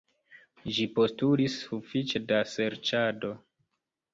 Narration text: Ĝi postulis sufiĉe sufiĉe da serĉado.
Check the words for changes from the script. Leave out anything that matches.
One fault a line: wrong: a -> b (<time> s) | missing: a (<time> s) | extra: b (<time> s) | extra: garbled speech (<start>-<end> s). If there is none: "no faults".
missing: sufiĉe (2.2 s)